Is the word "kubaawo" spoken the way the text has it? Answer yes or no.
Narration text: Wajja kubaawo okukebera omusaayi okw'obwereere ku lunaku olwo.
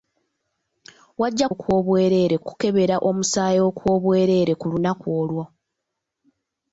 no